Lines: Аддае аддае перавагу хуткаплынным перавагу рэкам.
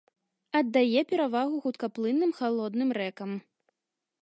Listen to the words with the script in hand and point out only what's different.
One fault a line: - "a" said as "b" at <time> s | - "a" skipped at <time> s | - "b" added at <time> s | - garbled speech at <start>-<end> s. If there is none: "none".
- "аддае" skipped at 1.0 s
- "перавагу" said as "халодным" at 2.4 s